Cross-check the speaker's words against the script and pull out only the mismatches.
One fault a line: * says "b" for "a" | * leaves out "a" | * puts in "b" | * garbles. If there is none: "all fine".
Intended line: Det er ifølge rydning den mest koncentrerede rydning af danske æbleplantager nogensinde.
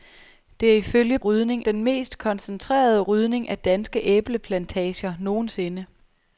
all fine